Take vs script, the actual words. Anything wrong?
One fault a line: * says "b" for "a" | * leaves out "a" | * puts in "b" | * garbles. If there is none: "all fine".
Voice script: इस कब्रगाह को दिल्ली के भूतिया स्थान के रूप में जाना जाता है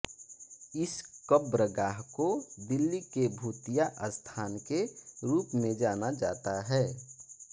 all fine